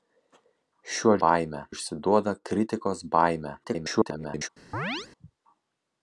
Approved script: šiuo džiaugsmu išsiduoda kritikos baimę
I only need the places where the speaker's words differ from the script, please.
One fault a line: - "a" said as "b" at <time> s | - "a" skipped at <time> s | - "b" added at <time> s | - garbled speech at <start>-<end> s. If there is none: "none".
- "džiaugsmu" said as "baimę" at 1.3 s
- garbled speech at 3.6-4.5 s